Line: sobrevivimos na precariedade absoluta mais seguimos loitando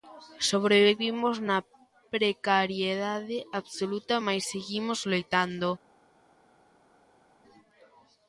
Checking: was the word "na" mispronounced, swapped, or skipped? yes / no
no